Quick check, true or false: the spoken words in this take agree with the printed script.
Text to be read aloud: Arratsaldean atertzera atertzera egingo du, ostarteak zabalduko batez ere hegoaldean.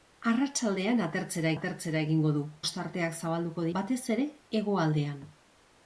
true